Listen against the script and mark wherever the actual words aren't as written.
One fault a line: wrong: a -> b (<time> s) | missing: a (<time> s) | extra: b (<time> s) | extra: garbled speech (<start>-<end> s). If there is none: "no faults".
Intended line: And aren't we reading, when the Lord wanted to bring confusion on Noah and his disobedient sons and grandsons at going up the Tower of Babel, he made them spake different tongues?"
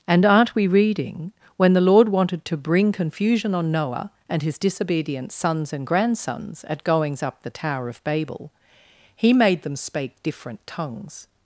wrong: going -> goings (6.8 s)